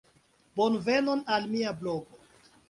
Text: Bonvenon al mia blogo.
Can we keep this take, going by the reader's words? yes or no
yes